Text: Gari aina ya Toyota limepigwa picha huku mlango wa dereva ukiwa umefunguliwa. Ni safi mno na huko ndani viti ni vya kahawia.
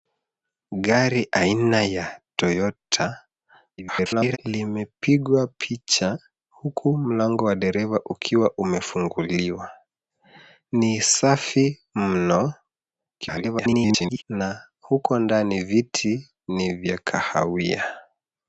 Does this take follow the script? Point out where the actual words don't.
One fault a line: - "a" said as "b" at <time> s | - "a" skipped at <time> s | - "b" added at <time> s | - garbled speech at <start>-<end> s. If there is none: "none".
- garbled speech at 3.8-4.4 s
- garbled speech at 13.2-14.2 s